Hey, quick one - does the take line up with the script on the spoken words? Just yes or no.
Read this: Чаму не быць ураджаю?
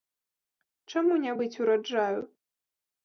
yes